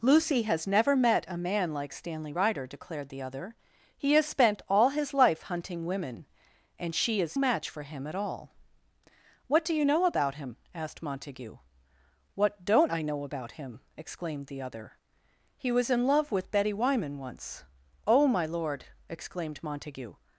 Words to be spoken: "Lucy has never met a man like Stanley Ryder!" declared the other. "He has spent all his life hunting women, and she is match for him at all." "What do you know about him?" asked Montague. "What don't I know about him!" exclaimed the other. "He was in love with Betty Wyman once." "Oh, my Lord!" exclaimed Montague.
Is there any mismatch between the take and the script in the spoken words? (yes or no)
no